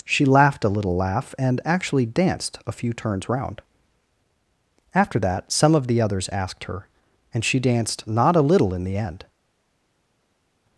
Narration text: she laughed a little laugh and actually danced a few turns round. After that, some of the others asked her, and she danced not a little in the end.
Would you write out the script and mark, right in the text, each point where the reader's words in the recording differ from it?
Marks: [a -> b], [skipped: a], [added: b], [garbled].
she laughed a little laugh and actually danced a few turns round. After that, some of the others asked her, and she danced not a little in the end.